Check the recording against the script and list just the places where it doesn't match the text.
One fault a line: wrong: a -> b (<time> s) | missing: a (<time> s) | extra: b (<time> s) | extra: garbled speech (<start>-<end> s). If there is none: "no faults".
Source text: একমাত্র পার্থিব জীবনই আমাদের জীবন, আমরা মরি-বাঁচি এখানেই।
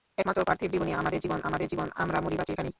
extra: আমাদের জীবন (1.4 s)